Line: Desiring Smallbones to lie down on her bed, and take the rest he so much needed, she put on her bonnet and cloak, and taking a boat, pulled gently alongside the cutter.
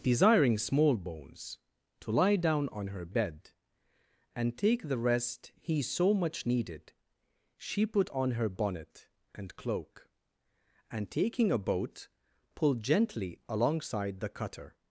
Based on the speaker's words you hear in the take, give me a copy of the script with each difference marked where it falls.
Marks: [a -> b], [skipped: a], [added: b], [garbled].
Desiring Smallbones to lie down on her bed, and take the rest he so much needed, she put on her bonnet and cloak, and taking a boat, pulled gently alongside the cutter.